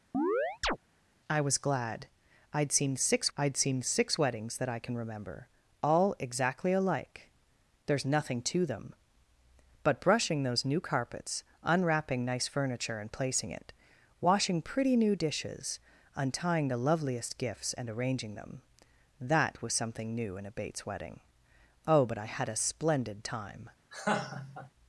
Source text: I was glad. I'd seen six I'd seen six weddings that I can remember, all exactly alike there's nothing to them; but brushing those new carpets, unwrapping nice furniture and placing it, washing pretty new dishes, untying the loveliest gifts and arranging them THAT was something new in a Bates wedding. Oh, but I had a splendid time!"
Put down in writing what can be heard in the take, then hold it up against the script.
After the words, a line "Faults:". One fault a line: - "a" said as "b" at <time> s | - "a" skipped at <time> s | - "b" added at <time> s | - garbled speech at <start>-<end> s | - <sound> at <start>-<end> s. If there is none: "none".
I was glad. I'd seen six I'd seen six weddings that I can remember, all exactly alike there's nothing to them; but brushing those new carpets, unwrapping nice furniture and placing it, washing pretty new dishes, untying the loveliest gifts and arranging them THAT was something new in a Bates wedding. Oh, but I had a splendid time!"
Faults:
- chirp at 0.1-0.8 s
- laugh at 23.9-24.7 s